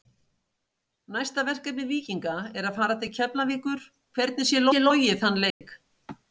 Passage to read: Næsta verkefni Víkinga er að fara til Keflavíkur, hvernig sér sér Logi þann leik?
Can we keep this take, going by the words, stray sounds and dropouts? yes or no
no